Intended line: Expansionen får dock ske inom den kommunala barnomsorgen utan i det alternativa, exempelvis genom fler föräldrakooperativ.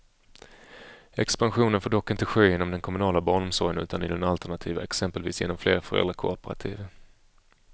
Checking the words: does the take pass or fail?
fail